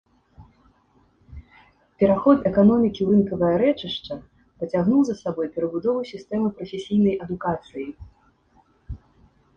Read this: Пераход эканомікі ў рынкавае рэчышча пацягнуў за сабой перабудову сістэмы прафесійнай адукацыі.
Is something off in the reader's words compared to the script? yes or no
no